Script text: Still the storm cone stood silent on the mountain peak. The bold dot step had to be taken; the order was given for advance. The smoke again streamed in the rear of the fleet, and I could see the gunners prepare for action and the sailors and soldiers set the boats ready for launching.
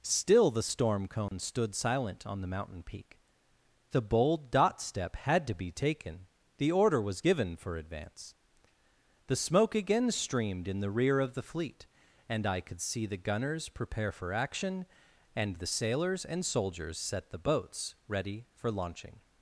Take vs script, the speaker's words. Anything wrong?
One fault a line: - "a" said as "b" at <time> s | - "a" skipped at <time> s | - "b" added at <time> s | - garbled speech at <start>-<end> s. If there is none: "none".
none